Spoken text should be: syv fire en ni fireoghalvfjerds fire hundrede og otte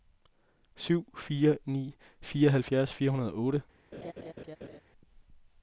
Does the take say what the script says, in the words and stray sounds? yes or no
no